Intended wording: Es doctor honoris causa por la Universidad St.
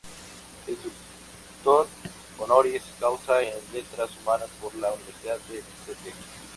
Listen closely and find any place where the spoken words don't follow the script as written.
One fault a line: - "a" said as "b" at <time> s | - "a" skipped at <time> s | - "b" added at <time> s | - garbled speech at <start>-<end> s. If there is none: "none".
- "en Letras Humanas" added at 3.4 s
- "de" added at 5.5 s